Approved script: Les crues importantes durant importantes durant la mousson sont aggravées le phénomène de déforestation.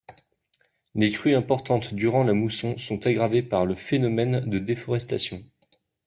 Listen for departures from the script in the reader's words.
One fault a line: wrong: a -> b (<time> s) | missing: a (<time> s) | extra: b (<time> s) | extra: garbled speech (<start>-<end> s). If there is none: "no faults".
missing: importantes durant (2.2 s)
extra: par (3.4 s)